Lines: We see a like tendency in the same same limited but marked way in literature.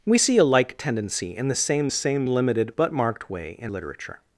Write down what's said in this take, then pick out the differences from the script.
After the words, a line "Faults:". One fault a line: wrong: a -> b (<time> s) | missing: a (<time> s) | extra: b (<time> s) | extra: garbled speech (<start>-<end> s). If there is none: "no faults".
We see a like tendency in the same same limited but marked way in literature.
Faults:
no faults